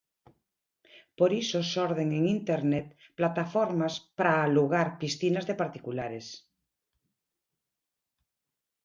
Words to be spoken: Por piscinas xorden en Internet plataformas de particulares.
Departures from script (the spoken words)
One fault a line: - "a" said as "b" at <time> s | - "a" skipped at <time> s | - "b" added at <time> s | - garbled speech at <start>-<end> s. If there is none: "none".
- "piscinas" said as "iso" at 1.4 s
- "para alugar piscinas" added at 4.2 s